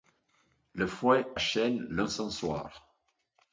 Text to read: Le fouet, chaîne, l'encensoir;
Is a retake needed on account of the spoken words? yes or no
no